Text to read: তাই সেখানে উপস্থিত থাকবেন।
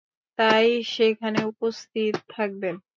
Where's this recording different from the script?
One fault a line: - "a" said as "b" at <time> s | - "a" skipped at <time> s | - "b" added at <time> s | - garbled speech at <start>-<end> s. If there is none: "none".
none